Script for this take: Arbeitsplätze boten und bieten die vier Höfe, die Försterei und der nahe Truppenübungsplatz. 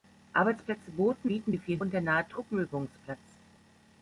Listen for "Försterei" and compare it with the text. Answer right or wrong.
wrong